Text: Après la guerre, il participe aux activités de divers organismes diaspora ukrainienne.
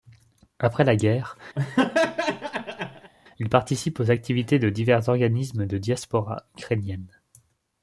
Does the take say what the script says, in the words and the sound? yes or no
no